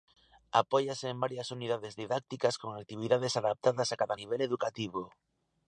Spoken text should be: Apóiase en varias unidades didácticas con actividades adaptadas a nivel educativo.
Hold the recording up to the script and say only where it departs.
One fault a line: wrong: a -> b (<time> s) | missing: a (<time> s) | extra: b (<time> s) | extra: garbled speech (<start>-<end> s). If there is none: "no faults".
extra: cada (4.0 s)